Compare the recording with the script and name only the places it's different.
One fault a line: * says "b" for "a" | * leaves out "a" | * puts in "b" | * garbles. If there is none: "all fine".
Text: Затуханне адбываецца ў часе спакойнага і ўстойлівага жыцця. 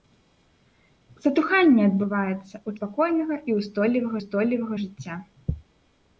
* leaves out "часе"
* puts in "ўстойлівага"